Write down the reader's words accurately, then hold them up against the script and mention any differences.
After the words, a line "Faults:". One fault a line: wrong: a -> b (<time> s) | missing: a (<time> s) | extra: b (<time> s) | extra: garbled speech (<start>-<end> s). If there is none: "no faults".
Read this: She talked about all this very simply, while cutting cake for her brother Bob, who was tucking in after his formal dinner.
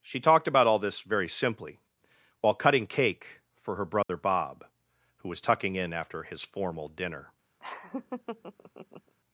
She talked about all this very simply, while cutting cake for her brother Bob, who was tucking in after his formal dinner.
Faults:
no faults